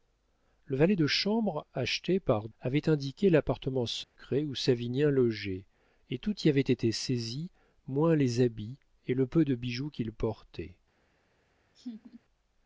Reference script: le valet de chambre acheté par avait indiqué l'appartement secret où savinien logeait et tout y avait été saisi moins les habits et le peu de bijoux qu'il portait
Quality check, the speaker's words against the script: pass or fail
pass